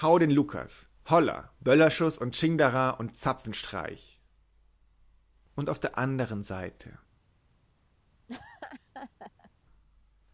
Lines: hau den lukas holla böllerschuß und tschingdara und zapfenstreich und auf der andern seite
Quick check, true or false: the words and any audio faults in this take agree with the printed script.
false